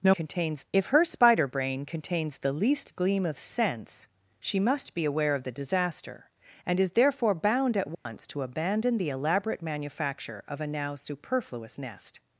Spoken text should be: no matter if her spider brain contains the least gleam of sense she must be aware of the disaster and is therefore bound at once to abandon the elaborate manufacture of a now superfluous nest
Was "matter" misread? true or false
true